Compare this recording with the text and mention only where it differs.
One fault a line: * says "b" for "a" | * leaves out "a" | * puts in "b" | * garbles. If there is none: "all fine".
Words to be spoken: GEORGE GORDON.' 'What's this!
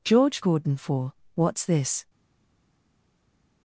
* puts in "for"